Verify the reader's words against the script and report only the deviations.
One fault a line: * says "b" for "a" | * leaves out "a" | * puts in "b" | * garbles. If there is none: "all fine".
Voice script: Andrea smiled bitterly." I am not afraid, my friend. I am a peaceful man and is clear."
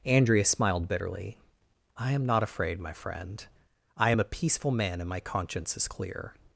* puts in "my conscience"